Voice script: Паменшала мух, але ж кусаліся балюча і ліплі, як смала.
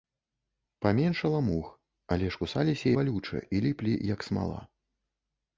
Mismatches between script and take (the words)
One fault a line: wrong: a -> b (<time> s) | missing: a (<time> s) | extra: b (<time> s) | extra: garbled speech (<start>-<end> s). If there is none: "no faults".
no faults